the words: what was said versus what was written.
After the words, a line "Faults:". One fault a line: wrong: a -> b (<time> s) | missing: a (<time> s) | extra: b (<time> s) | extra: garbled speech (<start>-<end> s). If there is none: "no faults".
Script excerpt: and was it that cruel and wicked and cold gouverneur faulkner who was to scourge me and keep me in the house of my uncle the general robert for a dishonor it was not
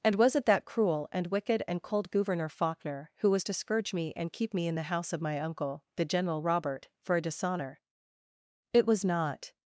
and was it that cruel and wicked and cold gouverneur faulkner who was to scourge me and keep me in the house of my uncle the general robert for a dishonor it was not
Faults:
no faults